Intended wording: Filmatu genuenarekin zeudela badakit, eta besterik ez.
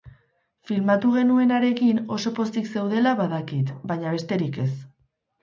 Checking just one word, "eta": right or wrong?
wrong